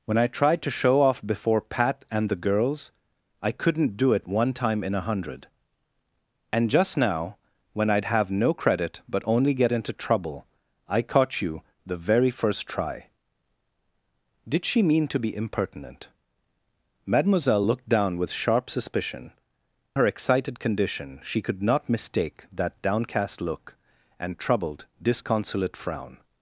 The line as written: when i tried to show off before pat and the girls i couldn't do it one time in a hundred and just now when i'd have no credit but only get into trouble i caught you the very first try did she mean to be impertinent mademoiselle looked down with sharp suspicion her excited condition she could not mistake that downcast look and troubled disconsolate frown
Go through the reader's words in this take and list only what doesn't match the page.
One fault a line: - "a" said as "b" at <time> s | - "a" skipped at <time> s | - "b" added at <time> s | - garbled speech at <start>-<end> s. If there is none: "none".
none